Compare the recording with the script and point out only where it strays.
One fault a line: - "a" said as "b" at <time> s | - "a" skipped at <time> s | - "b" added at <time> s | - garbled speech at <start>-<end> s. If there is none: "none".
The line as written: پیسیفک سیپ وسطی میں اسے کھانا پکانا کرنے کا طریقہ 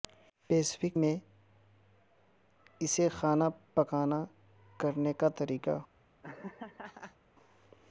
- "سیپ وسطی" skipped at 1.0 s